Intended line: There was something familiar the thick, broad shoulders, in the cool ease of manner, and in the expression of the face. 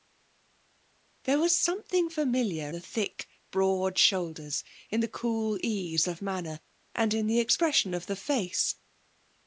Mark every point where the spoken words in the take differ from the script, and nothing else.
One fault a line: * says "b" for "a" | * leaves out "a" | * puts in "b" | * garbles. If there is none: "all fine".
all fine